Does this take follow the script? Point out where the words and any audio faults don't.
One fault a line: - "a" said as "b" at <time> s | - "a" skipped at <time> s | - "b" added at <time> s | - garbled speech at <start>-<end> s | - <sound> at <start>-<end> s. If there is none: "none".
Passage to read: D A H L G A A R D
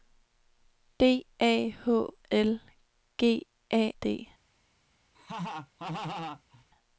- "A R" skipped at 3.9 s
- laugh at 5.1-6.6 s